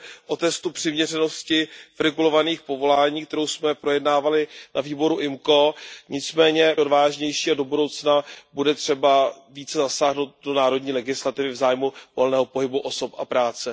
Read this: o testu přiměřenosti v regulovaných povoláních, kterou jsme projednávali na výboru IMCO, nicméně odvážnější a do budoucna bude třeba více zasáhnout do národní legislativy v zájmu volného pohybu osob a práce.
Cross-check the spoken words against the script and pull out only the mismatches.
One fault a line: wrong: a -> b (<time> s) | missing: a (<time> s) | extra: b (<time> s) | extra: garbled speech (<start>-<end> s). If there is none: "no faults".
no faults